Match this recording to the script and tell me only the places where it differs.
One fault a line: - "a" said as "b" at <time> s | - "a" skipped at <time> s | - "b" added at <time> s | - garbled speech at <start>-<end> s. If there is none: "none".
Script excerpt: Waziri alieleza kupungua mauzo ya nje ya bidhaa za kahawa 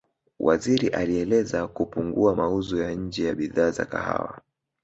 none